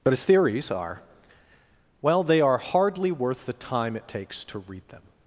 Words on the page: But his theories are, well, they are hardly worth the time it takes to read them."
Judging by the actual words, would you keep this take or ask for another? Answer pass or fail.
pass